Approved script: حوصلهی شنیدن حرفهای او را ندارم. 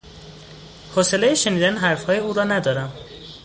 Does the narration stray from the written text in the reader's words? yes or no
no